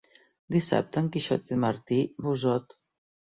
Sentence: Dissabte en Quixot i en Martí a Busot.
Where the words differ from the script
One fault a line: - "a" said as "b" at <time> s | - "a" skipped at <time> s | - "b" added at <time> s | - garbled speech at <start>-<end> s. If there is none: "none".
none